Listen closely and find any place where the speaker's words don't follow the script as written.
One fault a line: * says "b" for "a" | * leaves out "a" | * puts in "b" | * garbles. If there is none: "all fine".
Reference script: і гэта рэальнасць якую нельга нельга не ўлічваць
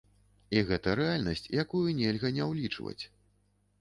* leaves out "нельга"